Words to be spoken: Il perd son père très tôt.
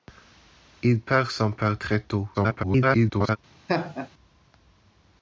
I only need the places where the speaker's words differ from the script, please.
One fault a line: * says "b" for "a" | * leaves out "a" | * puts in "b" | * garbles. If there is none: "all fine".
* garbles